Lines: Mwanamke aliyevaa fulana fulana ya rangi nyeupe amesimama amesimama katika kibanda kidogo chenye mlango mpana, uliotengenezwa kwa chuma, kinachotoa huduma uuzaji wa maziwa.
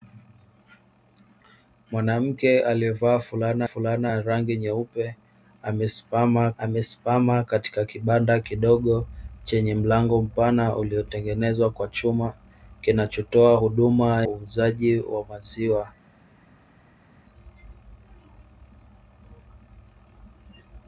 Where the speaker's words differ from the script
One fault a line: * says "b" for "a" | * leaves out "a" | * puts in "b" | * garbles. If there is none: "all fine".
all fine